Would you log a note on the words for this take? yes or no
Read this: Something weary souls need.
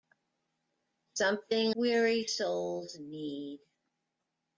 no